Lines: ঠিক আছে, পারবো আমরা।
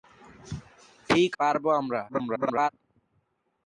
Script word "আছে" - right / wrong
wrong